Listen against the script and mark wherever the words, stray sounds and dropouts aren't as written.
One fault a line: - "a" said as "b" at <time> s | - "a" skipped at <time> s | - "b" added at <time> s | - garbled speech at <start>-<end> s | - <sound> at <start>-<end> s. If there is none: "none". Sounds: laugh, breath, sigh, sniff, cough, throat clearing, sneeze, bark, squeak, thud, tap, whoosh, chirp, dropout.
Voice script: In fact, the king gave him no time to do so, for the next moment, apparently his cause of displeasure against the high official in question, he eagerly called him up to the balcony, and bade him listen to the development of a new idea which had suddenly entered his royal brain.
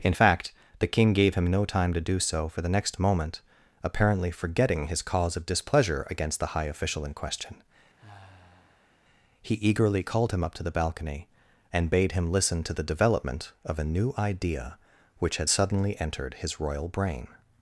- "forgetting" added at 4.3 s
- sigh at 8.0-9.0 s